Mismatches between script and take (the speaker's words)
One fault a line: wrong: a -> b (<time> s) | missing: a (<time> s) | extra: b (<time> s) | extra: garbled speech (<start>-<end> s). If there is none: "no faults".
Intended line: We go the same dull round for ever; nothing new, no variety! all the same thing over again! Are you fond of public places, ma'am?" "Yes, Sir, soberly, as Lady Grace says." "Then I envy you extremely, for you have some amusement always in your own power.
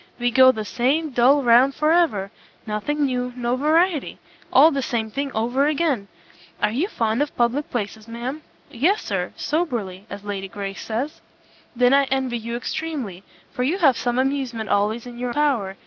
missing: own (15.3 s)